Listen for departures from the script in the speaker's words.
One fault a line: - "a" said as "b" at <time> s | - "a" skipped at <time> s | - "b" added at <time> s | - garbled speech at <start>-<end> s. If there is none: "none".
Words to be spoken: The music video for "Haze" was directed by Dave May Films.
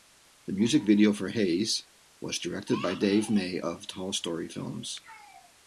- "of Tall Story" added at 3.6 s